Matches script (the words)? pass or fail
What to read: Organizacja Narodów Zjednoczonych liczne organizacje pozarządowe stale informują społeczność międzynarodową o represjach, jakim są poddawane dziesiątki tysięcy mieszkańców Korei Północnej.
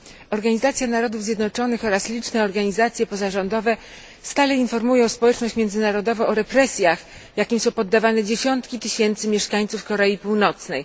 fail